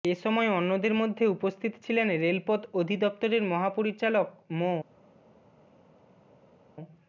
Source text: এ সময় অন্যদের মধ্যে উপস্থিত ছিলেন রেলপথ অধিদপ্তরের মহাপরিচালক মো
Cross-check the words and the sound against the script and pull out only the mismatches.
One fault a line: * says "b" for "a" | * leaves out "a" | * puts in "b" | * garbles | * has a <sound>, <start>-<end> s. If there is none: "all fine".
all fine